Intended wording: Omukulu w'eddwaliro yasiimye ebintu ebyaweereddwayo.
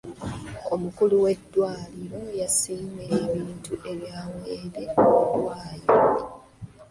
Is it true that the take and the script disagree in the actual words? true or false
false